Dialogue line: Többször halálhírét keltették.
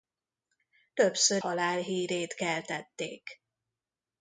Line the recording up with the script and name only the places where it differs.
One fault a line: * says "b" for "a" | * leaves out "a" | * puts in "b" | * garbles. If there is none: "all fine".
all fine